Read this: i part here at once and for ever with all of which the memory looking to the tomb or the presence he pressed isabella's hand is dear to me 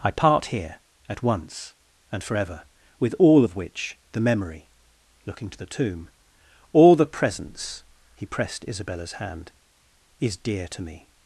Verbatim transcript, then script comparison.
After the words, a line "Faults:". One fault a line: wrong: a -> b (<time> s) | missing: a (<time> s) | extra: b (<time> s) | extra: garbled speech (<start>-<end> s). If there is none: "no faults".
i part here at once and for ever with all of which the memory looking to the tomb all the presence he pressed isabella's hand is dear to me
Faults:
wrong: or -> all (6.7 s)